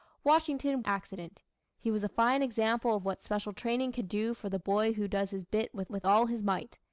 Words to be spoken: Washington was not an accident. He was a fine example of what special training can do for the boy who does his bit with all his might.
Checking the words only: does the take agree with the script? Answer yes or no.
no